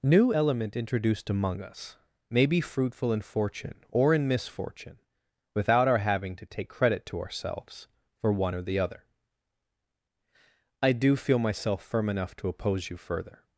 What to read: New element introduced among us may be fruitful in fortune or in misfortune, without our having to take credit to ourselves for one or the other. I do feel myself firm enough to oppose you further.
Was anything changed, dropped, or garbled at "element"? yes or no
no